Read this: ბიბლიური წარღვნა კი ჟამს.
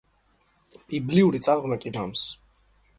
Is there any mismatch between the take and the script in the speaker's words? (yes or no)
no